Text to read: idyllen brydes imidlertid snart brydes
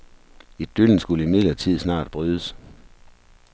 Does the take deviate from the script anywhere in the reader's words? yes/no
yes